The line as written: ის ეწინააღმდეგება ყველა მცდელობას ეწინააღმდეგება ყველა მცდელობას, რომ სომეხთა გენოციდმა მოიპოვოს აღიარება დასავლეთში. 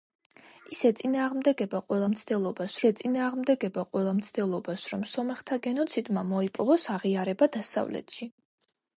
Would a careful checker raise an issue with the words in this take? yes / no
no